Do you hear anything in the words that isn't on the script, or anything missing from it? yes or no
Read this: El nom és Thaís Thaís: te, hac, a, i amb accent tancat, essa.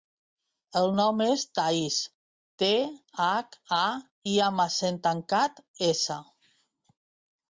yes